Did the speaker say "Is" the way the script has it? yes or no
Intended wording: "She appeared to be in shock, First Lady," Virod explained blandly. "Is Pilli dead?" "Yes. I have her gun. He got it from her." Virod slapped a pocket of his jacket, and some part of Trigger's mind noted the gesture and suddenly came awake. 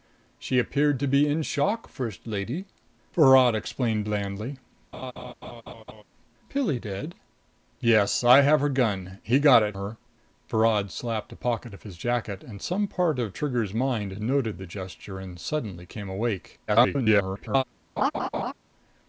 no